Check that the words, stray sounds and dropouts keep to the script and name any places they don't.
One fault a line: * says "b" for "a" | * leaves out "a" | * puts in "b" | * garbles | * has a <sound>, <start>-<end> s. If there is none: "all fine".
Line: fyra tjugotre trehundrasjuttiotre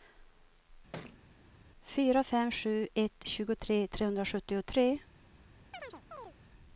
* has a thud, 0.9-1.2 s
* puts in "fem sju ett"
* has a chirp, 5.7-6.3 s